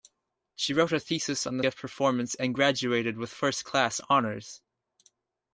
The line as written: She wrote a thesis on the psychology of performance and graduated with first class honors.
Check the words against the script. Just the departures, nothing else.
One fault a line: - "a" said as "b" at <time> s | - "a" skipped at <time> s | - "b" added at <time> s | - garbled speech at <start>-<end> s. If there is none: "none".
- "psychology" skipped at 1.6 s